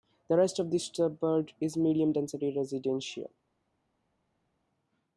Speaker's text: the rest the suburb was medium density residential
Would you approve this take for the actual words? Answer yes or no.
no